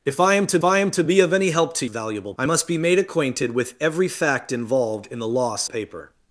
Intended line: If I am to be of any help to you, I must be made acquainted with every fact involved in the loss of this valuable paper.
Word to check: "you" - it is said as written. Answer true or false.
false